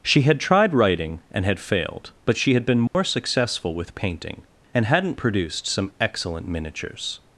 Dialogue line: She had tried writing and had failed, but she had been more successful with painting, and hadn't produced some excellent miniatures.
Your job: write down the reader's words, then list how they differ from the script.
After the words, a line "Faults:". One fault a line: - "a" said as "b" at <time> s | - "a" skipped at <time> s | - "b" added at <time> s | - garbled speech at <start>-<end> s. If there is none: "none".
She had tried writing and had failed, but she had been more successful with painting, and hadn't produced some excellent miniatures.
Faults:
none